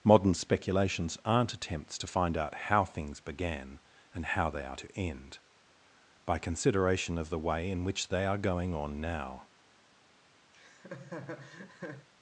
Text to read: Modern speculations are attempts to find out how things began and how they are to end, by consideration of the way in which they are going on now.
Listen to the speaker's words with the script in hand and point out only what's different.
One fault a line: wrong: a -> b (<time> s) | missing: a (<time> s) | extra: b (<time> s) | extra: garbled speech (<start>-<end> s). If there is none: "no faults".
wrong: are -> aren't (1.2 s)